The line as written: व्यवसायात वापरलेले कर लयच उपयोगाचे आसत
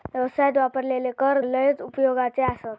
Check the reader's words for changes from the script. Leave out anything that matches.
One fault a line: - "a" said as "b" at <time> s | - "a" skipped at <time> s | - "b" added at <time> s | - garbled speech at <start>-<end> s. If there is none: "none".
none